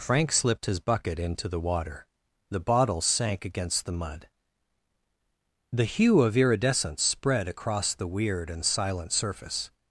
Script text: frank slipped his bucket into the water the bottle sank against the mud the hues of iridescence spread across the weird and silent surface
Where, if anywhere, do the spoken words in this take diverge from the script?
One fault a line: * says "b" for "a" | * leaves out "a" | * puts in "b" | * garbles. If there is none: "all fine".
* says "hue" for "hues"